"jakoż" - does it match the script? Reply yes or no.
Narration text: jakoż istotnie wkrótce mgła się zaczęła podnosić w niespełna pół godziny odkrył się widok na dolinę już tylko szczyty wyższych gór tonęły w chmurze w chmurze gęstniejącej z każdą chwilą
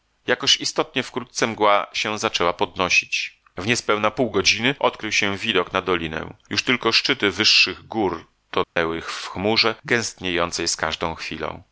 yes